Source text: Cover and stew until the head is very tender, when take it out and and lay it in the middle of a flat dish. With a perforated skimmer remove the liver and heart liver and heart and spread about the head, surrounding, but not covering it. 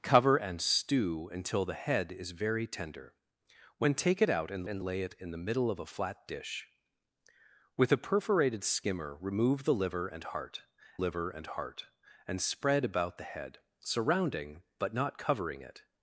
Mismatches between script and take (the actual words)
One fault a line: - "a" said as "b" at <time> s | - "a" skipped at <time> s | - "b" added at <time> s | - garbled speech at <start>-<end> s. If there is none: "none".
none